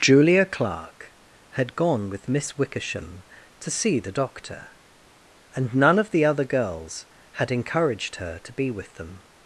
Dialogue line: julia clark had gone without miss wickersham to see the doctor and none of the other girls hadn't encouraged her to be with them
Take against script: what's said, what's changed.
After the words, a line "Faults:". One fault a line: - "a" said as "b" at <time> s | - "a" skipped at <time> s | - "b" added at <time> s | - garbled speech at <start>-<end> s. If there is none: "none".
julia clark had gone with miss wickersham to see the doctor and none of the other girls had encouraged her to be with them
Faults:
- "without" said as "with" at 2.1 s
- "hadn't" said as "had" at 7.3 s